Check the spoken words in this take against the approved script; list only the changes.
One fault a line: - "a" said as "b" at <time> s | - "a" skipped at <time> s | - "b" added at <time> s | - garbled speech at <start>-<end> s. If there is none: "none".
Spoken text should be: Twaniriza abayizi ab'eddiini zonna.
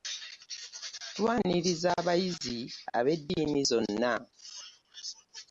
none